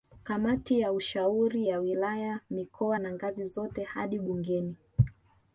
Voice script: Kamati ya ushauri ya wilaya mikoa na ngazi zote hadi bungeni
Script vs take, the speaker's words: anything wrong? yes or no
no